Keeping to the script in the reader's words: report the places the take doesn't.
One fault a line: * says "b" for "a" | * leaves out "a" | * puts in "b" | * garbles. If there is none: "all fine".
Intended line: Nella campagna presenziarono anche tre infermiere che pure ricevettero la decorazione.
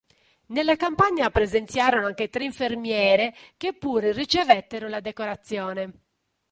all fine